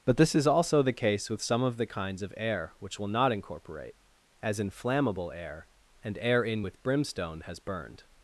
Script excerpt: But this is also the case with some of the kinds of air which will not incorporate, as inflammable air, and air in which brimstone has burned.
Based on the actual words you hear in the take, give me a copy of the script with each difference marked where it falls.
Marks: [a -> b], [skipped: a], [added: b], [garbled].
But this is also the case with some of the kinds of air which will not incorporate, as inflammable air, and air in [which -> with] brimstone has burned.